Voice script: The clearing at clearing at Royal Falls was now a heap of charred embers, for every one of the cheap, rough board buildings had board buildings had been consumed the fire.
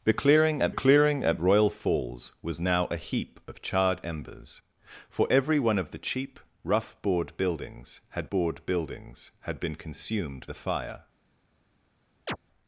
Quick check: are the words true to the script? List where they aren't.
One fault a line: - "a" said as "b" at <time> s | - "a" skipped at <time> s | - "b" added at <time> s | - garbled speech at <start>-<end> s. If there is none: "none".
none